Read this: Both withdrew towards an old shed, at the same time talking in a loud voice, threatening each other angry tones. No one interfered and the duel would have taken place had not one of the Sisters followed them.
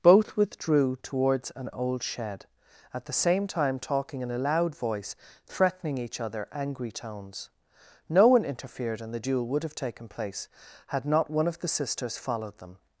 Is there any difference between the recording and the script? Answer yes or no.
no